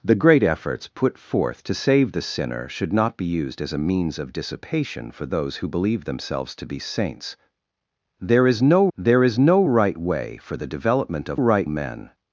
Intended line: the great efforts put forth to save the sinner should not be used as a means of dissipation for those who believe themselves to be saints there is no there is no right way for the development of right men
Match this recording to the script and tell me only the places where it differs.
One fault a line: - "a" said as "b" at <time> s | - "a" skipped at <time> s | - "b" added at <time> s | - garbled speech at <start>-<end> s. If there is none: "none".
none